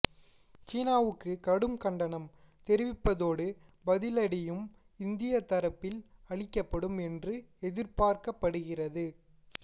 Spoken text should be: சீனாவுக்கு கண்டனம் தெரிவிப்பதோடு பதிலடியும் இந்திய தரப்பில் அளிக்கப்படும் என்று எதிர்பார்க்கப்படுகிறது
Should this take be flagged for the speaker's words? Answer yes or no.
yes